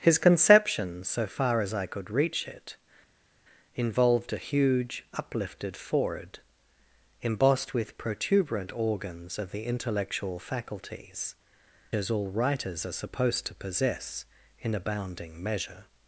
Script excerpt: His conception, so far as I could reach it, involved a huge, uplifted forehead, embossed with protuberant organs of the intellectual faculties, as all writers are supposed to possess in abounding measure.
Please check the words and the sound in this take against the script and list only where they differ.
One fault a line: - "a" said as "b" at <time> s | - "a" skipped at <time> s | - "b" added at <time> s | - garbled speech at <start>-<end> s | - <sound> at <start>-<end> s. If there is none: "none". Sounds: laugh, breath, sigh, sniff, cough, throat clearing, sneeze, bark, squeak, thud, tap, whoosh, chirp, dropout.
none